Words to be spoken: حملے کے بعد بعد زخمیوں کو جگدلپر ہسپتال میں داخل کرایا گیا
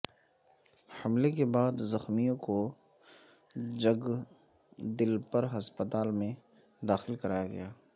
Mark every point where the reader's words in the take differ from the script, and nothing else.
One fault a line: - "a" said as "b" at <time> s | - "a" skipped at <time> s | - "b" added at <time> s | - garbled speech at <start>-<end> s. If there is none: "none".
- "بعد" skipped at 1.8 s